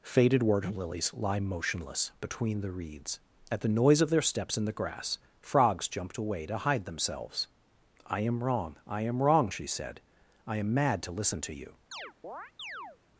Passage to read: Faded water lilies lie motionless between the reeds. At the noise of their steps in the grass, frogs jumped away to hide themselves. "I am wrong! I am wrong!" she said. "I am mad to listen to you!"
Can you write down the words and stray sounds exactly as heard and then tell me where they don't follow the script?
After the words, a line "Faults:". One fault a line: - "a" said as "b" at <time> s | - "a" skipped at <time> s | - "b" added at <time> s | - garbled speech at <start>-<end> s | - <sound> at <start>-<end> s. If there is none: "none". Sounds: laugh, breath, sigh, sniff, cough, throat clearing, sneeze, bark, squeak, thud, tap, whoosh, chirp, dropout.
Faded water lilies lie motionless between the reeds. At the noise of their steps in the grass, frogs jumped away to hide themselves. "I am wrong! I am wrong!" she said. "I am mad to listen to you!"
Faults:
- chirp at 11.9-13.0 s